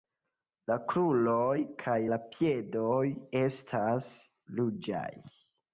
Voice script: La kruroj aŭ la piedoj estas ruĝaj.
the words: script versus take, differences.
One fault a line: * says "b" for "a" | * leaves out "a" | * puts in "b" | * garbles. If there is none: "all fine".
* says "kaj" for "aŭ"